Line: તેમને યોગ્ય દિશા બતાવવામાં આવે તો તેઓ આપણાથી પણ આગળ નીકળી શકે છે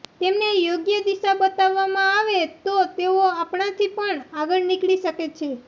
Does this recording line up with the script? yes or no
yes